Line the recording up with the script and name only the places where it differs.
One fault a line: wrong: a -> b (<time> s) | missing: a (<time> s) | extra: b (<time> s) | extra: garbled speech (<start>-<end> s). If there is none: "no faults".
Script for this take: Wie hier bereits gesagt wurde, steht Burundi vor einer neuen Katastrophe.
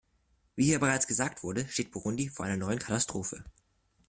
no faults